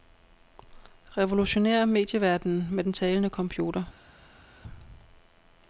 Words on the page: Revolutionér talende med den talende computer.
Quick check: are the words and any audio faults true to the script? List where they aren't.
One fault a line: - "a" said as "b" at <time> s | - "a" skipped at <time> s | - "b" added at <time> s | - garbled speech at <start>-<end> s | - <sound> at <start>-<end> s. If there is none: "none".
- "talende" said as "medieverdenen" at 1.9 s